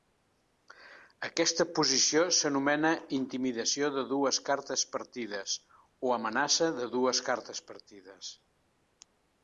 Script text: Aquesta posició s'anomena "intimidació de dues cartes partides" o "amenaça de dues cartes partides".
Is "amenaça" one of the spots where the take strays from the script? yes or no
no